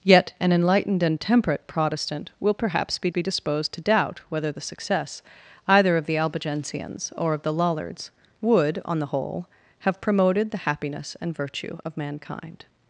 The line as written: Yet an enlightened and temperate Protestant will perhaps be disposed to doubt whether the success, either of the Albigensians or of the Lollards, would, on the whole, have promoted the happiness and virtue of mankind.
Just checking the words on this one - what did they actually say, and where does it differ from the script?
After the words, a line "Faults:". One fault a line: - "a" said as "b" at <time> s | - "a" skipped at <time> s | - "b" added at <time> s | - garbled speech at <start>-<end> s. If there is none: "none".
Yet an enlightened and temperate Protestant will perhaps be be disposed to doubt whether the success, either of the Albigensians or of the Lollards, would, on the whole, have promoted the happiness and virtue of mankind.
Faults:
- "be" added at 3.1 s